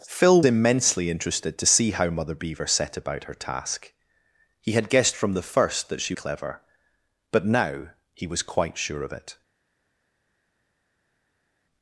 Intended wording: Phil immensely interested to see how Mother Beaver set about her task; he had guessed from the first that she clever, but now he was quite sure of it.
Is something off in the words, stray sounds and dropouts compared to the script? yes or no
no